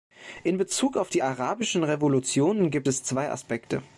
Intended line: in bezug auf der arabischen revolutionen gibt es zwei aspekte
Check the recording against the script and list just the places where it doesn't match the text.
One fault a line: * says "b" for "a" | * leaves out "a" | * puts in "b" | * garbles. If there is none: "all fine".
* says "die" for "der"